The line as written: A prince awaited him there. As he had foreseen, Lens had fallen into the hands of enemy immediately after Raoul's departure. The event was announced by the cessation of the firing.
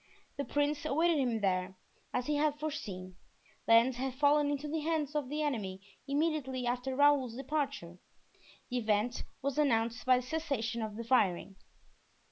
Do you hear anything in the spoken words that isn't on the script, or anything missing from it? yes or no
yes